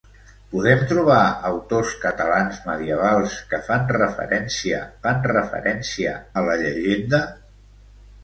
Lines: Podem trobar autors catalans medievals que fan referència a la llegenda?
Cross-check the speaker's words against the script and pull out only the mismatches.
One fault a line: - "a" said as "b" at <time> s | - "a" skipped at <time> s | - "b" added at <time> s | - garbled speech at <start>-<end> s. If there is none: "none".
- "fan referència" added at 5.0 s